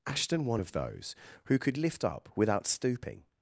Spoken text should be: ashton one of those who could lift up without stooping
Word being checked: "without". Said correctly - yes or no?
yes